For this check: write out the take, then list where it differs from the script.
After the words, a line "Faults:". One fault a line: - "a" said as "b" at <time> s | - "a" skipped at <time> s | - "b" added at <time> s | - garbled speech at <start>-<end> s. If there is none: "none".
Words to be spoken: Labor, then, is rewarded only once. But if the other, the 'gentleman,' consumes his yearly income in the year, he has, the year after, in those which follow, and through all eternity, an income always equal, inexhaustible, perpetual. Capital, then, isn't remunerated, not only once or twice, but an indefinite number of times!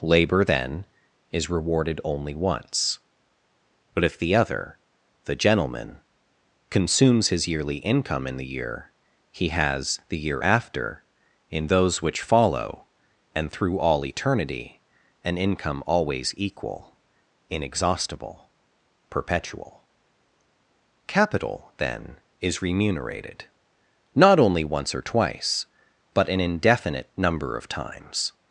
Labor, then, is rewarded only once. But if the other, the 'gentleman,' consumes his yearly income in the year, he has, the year after, in those which follow, and through all eternity, an income always equal, inexhaustible, perpetual. Capital, then, is remunerated, not only once or twice, but an indefinite number of times!
Faults:
- "isn't" said as "is" at 22.4 s